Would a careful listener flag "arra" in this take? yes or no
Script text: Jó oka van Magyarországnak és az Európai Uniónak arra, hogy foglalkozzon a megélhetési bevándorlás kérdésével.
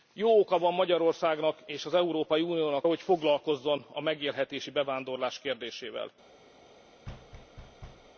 yes